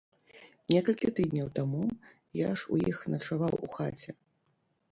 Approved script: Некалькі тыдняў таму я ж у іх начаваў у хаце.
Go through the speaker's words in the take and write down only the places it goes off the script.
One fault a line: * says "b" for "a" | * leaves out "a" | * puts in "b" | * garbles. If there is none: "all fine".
all fine